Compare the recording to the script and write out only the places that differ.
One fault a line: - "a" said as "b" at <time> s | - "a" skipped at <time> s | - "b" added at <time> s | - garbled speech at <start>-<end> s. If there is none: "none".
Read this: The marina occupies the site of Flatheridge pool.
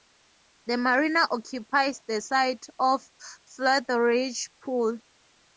none